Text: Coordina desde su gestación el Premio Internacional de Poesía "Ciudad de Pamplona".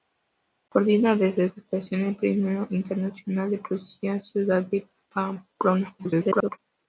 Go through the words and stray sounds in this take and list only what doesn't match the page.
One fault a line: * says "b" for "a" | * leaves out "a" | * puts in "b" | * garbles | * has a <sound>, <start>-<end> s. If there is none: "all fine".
* leaves out "su"
* garbles